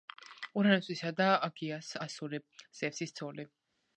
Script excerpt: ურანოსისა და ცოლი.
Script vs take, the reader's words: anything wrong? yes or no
yes